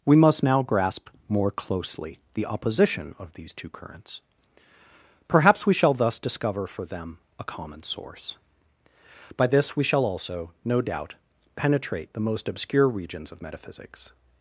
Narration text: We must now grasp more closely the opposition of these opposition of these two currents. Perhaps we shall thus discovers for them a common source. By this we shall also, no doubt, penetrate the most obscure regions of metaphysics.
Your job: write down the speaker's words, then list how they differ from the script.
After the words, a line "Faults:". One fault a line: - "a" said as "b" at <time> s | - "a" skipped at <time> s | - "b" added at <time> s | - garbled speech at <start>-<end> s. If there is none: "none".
We must now grasp more closely the opposition of these two currents. Perhaps we shall thus discover for them a common source. By this we shall also, no doubt, penetrate the most obscure regions of metaphysics.
Faults:
- "opposition of these" skipped at 3.5 s
- "discovers" said as "discover" at 6.2 s